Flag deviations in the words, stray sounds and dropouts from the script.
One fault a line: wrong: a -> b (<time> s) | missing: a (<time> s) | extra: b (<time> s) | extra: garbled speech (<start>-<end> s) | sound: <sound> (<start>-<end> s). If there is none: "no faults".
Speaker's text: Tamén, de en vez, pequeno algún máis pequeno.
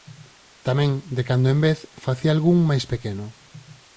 extra: cando (1.3 s)
wrong: pequeno -> facía (2.0 s)